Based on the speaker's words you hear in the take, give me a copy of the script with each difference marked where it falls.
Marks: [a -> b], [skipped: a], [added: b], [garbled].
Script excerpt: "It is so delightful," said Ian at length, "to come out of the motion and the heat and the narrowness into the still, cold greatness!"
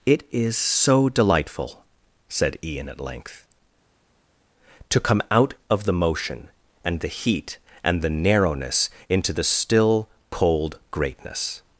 "It is so delightful," said Ian at length, "to come out of the motion and the heat and the narrowness into the still, cold greatness!"